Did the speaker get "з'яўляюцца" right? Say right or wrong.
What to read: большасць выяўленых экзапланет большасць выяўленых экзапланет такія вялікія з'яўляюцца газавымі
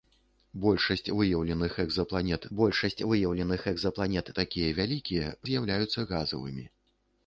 right